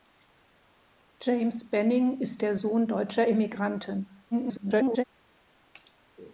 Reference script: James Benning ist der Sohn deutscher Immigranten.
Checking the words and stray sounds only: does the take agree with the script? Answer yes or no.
no